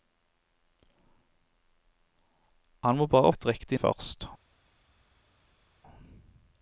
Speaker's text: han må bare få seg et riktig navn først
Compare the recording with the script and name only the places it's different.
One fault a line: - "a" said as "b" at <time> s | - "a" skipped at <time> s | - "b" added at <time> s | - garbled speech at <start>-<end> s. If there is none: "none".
- "få seg" skipped at 3.3 s
- "navn" skipped at 3.8 s